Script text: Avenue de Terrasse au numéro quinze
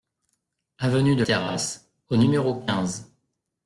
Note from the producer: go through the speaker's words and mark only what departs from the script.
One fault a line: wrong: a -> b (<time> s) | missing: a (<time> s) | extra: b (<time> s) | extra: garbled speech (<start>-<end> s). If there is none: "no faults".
no faults